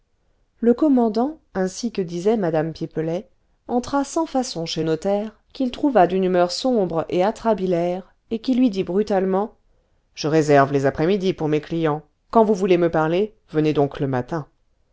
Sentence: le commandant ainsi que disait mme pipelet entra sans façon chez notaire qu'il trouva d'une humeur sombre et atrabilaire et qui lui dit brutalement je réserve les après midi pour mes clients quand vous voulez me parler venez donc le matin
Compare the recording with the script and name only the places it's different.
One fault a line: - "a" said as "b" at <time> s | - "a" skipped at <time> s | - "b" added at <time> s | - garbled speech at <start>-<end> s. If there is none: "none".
none